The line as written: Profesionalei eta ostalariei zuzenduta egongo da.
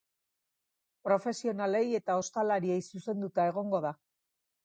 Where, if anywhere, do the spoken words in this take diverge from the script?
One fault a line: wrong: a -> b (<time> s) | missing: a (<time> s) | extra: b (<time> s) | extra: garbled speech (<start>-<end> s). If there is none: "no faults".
no faults